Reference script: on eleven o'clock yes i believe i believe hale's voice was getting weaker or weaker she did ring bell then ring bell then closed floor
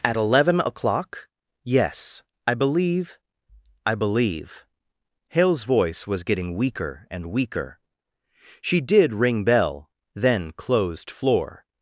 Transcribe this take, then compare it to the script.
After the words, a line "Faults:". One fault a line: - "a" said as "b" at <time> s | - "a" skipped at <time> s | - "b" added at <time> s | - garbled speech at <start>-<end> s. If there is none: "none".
at eleven o'clock yes i believe i believe hale's voice was getting weaker and weaker she did ring bell then closed floor
Faults:
- "on" said as "at" at 0.0 s
- "or" said as "and" at 7.1 s
- "ring bell then" skipped at 10.5 s